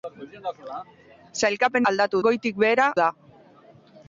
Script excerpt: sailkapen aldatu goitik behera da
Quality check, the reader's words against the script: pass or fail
pass